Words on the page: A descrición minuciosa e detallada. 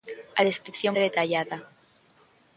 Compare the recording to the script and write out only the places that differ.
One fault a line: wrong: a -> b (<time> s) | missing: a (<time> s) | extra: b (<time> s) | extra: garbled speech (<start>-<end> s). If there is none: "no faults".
missing: minuciosa (0.9 s)